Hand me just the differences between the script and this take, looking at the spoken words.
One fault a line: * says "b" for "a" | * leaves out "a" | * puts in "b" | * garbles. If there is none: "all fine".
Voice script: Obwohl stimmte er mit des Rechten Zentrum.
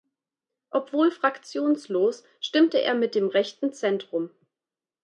* puts in "fraktionslos"
* says "dem" for "des"